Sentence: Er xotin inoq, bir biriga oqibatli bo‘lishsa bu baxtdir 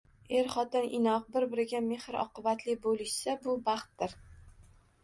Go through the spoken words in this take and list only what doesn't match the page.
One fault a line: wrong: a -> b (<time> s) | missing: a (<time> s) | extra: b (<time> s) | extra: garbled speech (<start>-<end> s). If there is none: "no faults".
extra: mehr (1.9 s)